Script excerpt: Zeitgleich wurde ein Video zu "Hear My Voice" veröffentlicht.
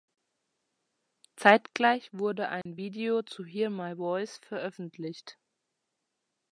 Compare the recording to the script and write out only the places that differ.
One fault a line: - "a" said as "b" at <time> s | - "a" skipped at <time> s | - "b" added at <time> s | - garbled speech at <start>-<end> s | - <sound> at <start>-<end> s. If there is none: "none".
- dropout at 2.6-2.7 s